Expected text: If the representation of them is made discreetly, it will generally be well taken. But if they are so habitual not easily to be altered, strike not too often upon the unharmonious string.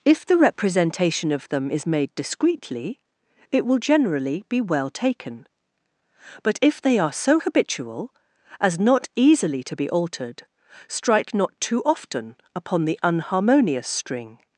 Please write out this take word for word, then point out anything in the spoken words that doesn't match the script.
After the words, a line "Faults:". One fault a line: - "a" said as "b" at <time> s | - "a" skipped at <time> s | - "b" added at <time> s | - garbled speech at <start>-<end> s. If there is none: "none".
If the representation of them is made discreetly, it will generally be well taken. But if they are so habitual as not easily to be altered, strike not too often upon the unharmonious string.
Faults:
- "as" added at 8.6 s